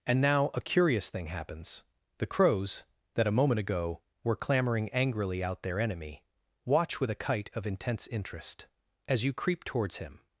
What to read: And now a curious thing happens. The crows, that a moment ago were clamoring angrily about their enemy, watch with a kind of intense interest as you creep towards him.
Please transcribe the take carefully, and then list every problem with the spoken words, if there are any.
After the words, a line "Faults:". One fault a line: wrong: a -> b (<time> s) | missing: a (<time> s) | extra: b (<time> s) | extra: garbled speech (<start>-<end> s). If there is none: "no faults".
And now a curious thing happens. The crows, that a moment ago were clamoring angrily out their enemy, watch with a kite of intense interest as you creep towards him.
Faults:
wrong: about -> out (5.4 s)
wrong: kind -> kite (7.2 s)